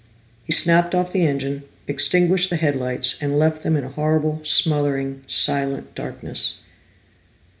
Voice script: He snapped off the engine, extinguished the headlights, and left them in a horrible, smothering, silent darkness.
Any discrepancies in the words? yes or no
no